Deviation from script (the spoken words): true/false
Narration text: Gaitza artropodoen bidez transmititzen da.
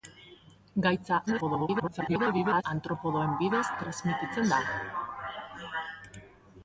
true